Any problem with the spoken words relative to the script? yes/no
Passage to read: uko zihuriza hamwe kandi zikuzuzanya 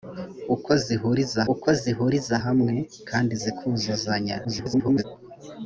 yes